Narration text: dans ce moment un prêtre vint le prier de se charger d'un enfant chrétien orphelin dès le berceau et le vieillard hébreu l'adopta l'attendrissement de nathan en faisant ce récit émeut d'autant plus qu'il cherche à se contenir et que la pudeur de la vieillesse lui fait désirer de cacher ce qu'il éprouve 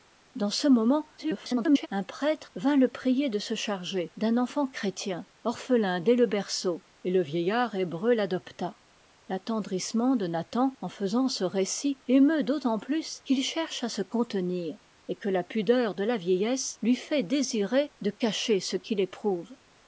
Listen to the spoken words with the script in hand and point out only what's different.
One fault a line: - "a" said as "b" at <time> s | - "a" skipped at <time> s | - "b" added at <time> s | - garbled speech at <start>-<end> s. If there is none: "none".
- garbled speech at 1.2-1.9 s